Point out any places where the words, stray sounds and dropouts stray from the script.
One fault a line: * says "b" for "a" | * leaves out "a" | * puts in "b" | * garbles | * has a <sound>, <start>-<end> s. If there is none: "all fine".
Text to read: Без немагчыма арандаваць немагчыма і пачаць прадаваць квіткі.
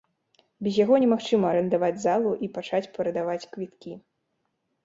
* puts in "яго"
* says "залу" for "немагчыма"